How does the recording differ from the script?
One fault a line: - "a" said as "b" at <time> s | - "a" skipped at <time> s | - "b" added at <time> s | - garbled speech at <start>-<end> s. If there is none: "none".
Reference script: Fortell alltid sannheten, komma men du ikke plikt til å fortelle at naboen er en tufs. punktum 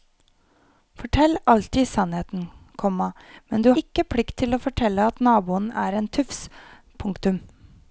none